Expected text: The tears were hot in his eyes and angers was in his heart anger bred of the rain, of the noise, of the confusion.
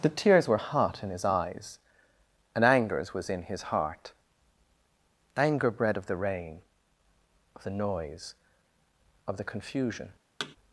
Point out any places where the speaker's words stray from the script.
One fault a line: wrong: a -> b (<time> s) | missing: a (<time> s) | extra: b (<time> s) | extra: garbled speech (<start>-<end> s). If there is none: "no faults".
no faults